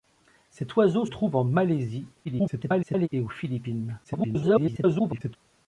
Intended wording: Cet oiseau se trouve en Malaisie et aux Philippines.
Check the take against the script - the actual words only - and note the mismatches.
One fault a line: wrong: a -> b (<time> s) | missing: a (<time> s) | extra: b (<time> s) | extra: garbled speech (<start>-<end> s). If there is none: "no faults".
missing: se (1.1 s)
extra: garbled speech (2.2-3.1 s)
extra: garbled speech (4.0-5.4 s)